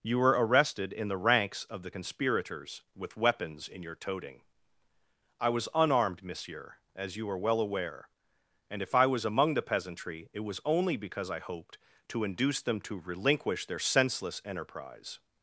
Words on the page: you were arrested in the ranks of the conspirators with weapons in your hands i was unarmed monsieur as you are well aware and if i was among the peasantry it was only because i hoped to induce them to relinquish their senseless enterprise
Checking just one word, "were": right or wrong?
right